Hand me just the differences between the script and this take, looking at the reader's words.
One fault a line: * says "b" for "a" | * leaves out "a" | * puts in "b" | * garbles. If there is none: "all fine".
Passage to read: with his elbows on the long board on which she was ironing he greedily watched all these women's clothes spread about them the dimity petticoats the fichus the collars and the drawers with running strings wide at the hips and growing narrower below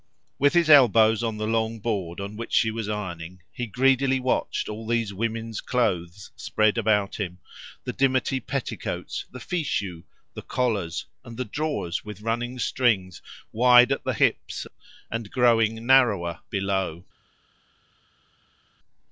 * says "him" for "them"